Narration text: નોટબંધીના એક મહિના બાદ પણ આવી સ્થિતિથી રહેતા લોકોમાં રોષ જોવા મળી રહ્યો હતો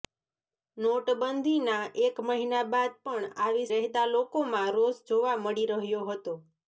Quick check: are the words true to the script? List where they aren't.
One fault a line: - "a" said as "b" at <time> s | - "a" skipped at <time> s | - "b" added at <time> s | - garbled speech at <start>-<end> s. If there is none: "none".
- "સ્થિતિથી" skipped at 3.7 s